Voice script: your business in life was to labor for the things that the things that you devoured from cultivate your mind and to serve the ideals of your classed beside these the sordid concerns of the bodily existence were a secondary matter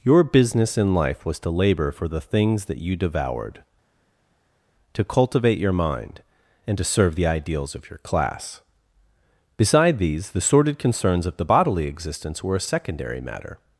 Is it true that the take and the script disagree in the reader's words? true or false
true